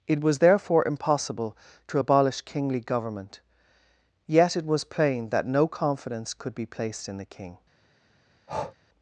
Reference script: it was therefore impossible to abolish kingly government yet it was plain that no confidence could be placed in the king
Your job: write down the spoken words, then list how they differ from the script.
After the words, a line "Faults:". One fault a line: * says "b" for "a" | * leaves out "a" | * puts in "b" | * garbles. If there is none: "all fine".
it was therefore impossible to abolish kingly government yet it was plain that no confidence could be placed in the king
Faults:
all fine